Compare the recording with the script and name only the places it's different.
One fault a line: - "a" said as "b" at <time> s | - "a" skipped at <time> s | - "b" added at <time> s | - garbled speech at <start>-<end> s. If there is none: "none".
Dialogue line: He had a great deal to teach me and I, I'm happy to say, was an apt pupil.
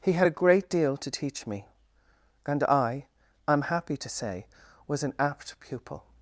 none